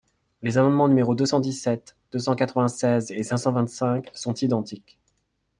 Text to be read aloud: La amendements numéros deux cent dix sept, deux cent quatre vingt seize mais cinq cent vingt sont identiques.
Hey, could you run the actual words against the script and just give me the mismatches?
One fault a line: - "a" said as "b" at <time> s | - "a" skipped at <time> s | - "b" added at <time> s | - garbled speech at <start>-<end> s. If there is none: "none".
- "La" said as "Les" at 0.4 s
- "mais" said as "et" at 3.1 s
- "cinq" added at 3.7 s